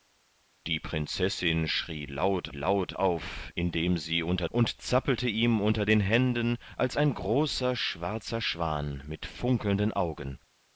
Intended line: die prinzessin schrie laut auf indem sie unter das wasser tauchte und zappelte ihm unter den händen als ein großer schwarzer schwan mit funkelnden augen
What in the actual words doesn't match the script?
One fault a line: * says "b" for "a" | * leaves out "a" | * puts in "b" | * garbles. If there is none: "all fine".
* puts in "laut"
* leaves out "das wasser tauchte"